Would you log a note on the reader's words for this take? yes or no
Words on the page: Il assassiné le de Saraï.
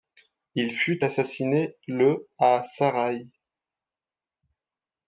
yes